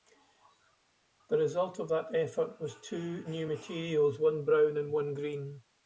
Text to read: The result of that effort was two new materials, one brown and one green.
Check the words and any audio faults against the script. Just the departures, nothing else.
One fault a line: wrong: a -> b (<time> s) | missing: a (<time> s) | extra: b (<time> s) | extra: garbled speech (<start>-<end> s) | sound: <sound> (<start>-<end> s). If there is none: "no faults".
no faults